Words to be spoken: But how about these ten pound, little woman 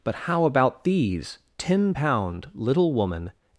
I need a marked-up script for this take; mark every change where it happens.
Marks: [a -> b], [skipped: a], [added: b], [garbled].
But how about these ten pound, little woman